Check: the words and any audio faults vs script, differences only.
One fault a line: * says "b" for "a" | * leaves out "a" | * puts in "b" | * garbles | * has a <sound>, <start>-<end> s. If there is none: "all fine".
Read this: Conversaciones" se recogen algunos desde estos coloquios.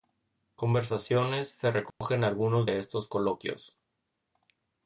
* has a dropout, 1.9-2.0 s
* says "de" for "desde"